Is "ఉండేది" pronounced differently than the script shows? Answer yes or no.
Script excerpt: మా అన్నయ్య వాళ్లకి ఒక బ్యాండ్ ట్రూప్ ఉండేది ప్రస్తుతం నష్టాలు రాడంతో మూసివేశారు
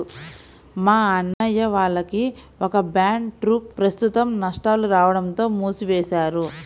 yes